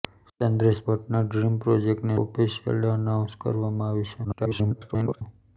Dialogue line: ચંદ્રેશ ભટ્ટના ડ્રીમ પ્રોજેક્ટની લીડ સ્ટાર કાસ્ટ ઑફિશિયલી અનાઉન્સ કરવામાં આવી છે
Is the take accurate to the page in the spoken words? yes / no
no